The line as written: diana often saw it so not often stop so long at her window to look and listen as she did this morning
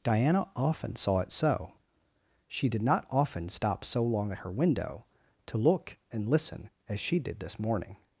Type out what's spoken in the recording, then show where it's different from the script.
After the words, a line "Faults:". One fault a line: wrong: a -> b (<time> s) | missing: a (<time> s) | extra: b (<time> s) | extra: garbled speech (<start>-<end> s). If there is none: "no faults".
diana often saw it so she did not often stop so long at her window to look and listen as she did this morning
Faults:
extra: she did (2.5 s)